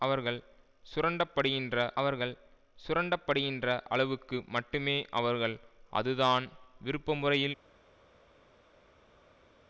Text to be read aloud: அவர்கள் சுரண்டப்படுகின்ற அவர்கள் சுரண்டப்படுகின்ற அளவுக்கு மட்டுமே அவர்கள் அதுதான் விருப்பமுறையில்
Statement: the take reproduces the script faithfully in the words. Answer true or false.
true